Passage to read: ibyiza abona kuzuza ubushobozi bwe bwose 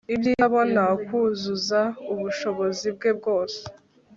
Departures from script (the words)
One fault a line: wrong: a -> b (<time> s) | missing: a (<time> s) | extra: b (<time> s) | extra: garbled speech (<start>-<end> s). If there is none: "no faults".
no faults